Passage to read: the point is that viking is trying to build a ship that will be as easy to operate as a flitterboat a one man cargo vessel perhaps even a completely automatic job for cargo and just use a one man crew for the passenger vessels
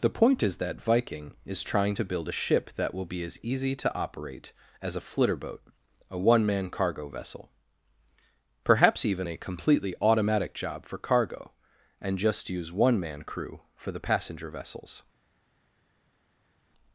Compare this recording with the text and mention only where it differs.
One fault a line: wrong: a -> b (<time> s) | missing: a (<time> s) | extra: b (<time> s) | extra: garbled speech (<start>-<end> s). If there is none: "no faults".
missing: a (12.7 s)